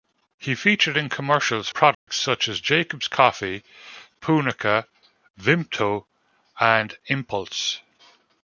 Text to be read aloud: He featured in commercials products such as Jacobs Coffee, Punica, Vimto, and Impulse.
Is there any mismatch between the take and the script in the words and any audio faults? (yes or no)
yes